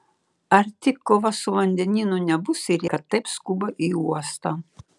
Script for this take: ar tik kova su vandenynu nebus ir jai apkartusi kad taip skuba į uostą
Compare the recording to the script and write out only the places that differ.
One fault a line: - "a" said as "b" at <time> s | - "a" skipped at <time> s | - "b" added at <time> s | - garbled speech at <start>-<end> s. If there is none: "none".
- "jai apkartusi" skipped at 2.9 s